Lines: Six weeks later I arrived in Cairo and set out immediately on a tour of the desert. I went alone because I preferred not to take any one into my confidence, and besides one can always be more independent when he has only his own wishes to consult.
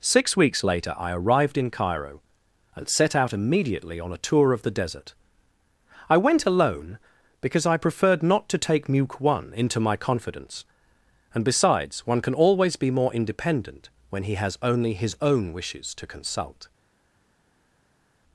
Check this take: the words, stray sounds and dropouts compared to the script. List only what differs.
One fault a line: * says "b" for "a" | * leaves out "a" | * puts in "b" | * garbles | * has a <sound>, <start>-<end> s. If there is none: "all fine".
* says "muke" for "any"